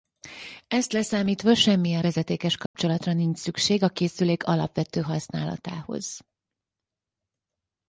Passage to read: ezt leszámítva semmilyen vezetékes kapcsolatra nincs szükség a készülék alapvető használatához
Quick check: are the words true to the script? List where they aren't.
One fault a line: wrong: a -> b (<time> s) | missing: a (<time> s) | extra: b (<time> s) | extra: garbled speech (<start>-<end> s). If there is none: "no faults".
no faults